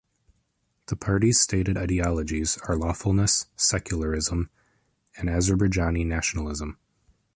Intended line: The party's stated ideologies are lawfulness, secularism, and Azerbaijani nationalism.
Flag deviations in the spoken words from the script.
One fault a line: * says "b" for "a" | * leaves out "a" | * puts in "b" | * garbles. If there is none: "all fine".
all fine